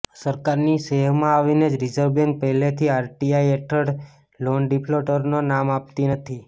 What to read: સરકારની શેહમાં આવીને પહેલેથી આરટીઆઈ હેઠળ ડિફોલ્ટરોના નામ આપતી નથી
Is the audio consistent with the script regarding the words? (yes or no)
no